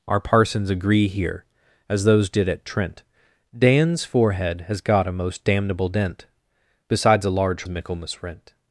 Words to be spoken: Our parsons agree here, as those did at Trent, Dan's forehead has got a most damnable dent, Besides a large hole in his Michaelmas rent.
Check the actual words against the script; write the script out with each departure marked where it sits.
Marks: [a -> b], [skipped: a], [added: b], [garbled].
Our parsons agree here, as those did at Trent, Dan's forehead has got a most damnable dent, Besides a large [skipped: hole in his] Michaelmas rent.